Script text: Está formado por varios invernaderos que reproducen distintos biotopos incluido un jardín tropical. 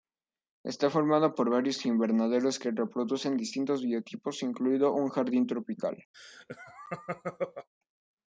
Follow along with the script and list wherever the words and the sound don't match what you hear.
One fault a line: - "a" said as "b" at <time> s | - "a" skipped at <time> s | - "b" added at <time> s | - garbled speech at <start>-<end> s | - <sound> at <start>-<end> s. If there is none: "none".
- laugh at 6.1-7.7 s